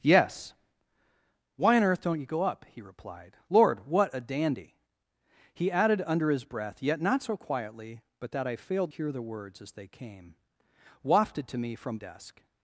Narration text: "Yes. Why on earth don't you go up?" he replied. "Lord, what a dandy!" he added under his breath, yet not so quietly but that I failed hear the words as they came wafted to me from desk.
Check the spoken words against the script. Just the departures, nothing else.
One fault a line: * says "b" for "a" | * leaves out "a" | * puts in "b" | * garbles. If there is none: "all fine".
all fine